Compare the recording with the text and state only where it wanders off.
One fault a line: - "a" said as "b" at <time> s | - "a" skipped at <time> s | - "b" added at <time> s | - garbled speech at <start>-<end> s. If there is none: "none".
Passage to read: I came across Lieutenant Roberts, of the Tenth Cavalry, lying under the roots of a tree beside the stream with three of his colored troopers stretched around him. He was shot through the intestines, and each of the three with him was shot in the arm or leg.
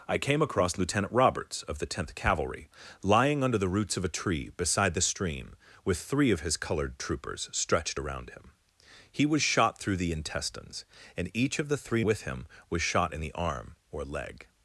none